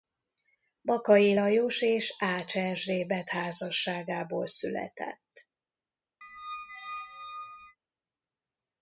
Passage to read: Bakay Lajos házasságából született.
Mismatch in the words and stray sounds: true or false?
true